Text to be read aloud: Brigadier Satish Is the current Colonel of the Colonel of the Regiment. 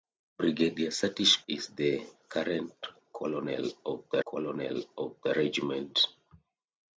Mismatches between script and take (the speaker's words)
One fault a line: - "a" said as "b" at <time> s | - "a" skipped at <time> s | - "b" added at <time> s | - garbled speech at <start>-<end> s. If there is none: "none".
none